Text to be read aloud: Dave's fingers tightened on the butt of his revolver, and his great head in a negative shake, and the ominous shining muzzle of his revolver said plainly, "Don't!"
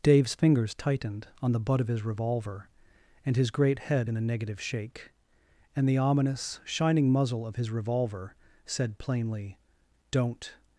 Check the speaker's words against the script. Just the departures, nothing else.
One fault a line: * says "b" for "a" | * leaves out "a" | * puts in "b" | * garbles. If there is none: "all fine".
all fine